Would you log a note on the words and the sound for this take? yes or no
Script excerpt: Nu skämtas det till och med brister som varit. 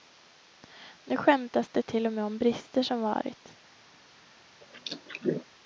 yes